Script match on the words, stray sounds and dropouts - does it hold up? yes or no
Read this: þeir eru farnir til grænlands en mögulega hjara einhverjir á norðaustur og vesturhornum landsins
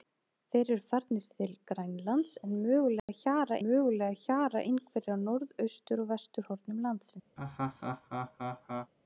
no